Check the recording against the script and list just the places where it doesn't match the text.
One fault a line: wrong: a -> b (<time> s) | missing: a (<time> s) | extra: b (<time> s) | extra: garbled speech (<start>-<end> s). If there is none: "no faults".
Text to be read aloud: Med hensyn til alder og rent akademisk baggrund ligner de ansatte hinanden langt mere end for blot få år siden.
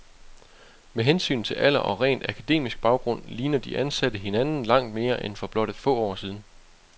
no faults